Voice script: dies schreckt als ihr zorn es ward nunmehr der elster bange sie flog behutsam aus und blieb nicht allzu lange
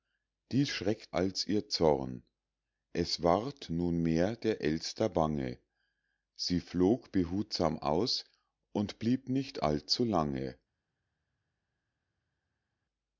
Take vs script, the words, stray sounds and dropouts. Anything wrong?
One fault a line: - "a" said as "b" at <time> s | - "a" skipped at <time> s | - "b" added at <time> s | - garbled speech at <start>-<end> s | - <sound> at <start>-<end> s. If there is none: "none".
none